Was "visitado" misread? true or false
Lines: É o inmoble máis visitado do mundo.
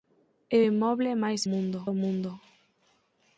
true